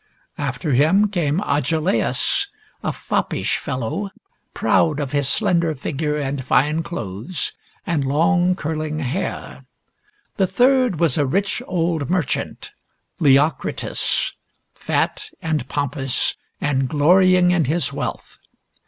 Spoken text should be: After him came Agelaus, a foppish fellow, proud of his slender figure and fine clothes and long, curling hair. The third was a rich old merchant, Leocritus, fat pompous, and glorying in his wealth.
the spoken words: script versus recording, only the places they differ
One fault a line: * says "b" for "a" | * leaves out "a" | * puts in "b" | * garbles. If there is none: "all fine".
* puts in "and"